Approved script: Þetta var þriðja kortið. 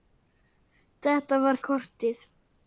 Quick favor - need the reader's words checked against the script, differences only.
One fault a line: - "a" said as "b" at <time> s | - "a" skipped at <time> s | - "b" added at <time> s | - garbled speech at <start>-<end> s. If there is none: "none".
- "þriðja" skipped at 1.6 s